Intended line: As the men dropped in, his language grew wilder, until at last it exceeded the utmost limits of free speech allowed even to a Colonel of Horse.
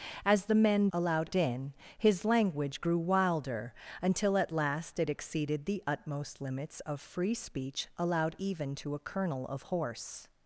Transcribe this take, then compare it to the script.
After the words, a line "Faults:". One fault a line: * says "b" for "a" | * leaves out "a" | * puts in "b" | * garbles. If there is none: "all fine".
As the men allowed in, his language grew wilder, until at last it exceeded the utmost limits of free speech allowed even to a Colonel of Horse.
Faults:
* says "allowed" for "dropped"